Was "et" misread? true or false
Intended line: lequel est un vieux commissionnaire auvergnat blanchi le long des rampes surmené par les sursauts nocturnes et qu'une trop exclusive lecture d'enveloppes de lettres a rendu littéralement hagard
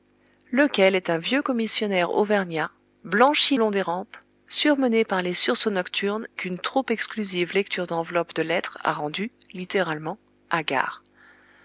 true